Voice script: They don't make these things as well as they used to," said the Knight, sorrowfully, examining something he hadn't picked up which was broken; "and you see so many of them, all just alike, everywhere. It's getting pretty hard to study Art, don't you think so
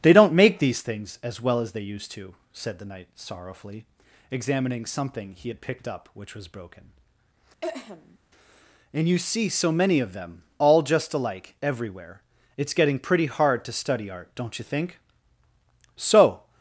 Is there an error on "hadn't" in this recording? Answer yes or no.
yes